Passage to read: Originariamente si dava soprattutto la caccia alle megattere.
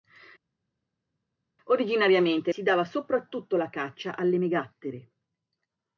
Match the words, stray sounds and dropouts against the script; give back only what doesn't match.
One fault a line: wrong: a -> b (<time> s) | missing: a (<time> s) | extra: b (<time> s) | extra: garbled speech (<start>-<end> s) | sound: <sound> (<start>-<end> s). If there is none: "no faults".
no faults